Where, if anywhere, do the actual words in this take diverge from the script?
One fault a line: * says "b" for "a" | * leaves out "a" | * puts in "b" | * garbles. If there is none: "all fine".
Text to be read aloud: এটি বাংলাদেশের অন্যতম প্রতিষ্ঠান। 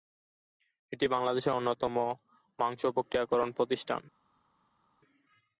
* puts in "মাংস প্রক্রিয়াকরণ"